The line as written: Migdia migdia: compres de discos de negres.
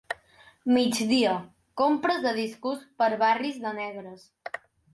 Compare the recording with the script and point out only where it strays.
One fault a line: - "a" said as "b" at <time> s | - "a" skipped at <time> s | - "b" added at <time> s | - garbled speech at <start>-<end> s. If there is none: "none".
- "migdia" skipped at 1.3 s
- "per barris" added at 3.0 s